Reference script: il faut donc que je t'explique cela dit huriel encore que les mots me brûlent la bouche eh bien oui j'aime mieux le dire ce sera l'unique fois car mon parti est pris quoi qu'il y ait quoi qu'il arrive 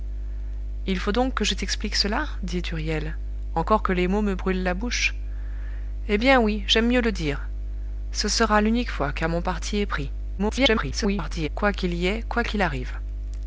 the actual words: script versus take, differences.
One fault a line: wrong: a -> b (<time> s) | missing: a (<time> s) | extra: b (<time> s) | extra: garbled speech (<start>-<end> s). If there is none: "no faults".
extra: garbled speech (10.4-11.5 s)